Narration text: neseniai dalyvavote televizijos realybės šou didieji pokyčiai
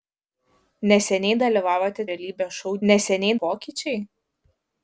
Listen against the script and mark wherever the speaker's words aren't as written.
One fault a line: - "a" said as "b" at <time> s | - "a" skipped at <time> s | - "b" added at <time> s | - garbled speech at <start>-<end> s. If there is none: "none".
- "televizijos" skipped at 2.1 s
- "didieji" said as "neseniai" at 2.9 s